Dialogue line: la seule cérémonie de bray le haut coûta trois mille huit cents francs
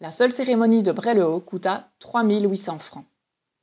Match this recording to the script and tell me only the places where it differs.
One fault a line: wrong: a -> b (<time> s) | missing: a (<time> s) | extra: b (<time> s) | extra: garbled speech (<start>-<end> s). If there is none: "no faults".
no faults